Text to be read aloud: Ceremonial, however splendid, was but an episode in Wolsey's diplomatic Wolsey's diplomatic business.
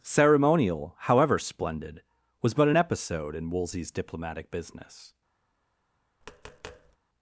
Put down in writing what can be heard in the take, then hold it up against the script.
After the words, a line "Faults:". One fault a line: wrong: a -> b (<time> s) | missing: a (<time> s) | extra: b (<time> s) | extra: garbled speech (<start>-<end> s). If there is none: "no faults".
Ceremonial, however splendid, was but an episode in Wolsey's diplomatic business.
Faults:
missing: Wolsey's diplomatic (4.5 s)